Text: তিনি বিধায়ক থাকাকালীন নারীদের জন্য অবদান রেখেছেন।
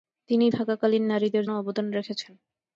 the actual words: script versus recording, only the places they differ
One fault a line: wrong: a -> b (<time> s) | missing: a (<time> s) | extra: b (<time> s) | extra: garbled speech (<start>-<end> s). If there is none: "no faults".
missing: বিধায়ক (0.5 s)
missing: জন্য (1.5 s)